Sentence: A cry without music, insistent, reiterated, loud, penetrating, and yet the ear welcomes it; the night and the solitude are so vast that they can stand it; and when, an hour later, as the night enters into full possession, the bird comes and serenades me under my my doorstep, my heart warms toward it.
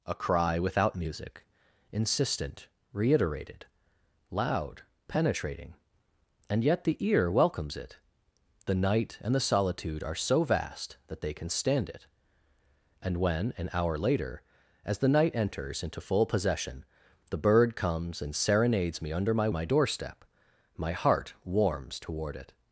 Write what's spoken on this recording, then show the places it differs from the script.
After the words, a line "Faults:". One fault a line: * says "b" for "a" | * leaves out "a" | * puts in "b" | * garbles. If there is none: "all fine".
A cry without music, insistent, reiterated, loud, penetrating, and yet the ear welcomes it; the night and the solitude are so vast that they can stand it; and when, an hour later, as the night enters into full possession, the bird comes and serenades me under my my doorstep, my heart warms toward it.
Faults:
all fine